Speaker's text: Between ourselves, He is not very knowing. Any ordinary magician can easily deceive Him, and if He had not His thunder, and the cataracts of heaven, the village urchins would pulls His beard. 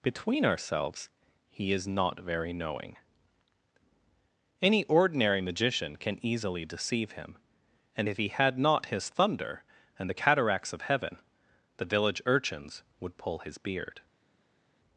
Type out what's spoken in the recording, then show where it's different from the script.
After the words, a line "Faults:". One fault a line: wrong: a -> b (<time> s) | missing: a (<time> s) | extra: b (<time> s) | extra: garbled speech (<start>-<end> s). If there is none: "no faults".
Between ourselves, He is not very knowing. Any ordinary magician can easily deceive Him, and if He had not His thunder, and the cataracts of heaven, the village urchins would pull His beard.
Faults:
wrong: pulls -> pull (13.2 s)